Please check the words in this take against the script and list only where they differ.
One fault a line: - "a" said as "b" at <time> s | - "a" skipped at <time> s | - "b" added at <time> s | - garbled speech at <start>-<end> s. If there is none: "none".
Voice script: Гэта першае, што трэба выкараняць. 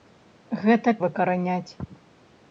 - "першае што трэба" skipped at 0.9 s